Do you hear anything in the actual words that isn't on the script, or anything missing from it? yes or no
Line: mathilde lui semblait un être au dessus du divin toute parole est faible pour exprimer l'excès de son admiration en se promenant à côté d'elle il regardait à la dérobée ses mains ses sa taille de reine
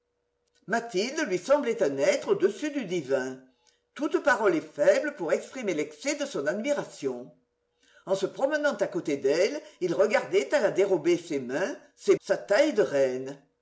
no